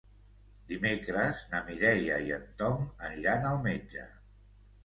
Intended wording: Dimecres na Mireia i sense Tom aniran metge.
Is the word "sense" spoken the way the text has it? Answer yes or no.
no